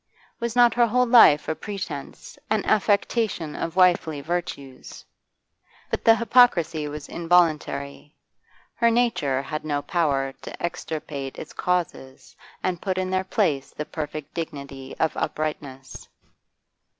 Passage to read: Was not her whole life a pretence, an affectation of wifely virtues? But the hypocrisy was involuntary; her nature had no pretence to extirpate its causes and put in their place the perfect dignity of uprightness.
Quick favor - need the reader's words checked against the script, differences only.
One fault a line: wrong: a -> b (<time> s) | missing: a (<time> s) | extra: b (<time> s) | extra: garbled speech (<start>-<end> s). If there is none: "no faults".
wrong: pretence -> power (9.8 s)